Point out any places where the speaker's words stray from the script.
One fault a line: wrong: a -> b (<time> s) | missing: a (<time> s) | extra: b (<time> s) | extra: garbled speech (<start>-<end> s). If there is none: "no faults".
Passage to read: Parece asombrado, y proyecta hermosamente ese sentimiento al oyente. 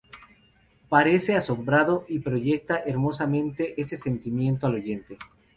no faults